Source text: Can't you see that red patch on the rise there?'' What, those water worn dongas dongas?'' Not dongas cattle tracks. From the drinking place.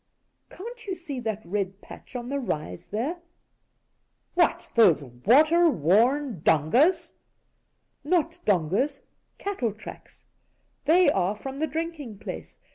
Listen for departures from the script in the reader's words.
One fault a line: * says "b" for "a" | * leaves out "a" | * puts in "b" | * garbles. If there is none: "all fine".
* leaves out "dongas"
* puts in "They are"